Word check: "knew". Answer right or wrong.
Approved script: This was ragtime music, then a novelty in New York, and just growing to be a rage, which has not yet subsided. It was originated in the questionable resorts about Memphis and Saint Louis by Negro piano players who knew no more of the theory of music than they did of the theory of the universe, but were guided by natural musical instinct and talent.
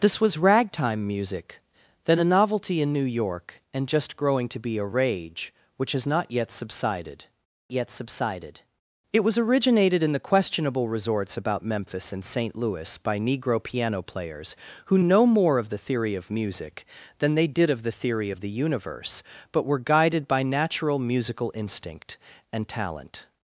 wrong